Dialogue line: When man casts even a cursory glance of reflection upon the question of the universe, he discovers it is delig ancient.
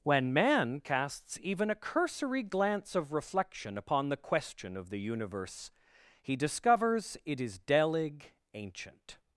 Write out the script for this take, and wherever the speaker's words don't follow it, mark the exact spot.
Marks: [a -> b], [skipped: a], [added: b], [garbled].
When man casts even a cursory glance of reflection upon the question of the universe, he discovers it is delig ancient.